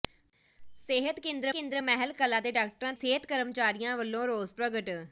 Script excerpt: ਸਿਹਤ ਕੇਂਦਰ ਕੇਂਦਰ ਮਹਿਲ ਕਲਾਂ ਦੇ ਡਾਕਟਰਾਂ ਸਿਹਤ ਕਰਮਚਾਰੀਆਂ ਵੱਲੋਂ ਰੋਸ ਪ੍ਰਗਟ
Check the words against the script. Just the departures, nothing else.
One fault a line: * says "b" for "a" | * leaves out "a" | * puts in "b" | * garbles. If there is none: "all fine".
all fine